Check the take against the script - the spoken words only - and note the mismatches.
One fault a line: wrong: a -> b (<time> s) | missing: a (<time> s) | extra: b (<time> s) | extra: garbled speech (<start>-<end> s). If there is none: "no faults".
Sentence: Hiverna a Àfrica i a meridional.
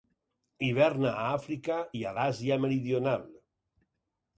extra: l'Àsia (2.2 s)